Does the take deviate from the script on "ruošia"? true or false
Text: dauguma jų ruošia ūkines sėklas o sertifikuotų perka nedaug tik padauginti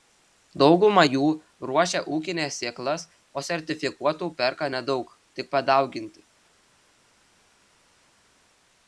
false